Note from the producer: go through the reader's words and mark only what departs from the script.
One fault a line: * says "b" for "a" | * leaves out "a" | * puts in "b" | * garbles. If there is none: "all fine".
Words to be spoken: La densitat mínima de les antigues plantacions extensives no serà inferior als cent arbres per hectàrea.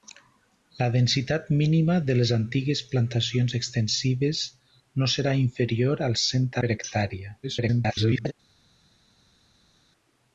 * leaves out "arbres"
* garbles